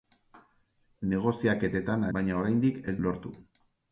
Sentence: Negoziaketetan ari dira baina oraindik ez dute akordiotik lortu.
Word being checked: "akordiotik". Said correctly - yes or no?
no